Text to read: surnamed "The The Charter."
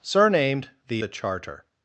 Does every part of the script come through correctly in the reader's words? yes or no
yes